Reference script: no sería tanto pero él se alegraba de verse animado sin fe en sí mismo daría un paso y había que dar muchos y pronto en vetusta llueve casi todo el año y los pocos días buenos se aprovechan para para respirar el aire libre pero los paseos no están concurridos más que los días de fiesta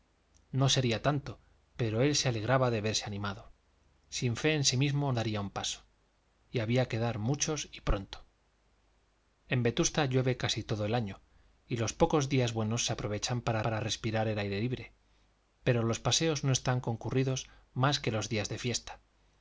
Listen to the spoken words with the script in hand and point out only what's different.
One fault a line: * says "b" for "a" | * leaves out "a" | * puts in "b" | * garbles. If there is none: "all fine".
all fine